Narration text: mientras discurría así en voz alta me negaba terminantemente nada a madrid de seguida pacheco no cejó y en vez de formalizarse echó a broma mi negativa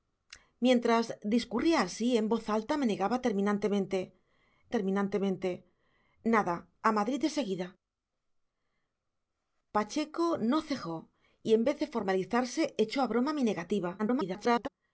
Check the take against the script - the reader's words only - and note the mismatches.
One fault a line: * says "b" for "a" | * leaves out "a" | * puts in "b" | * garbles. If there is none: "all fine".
* puts in "terminantemente"
* garbles